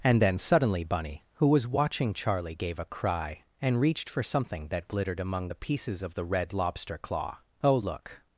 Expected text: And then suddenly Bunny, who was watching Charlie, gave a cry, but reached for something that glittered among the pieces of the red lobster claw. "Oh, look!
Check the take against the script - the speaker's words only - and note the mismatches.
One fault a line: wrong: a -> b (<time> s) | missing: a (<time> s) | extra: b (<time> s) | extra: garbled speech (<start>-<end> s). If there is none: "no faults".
wrong: but -> and (3.6 s)